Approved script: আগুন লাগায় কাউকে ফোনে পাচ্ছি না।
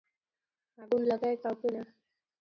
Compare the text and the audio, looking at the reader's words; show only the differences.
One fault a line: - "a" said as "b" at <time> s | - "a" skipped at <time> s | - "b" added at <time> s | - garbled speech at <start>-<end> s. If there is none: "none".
- "ফোনে পাচ্ছি" skipped at 1.7 s